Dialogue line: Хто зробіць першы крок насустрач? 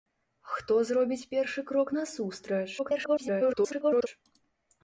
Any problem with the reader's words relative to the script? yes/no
yes